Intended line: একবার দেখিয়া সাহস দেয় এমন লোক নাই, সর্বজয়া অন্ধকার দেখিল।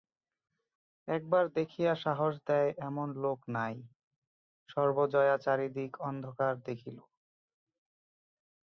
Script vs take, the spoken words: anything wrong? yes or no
yes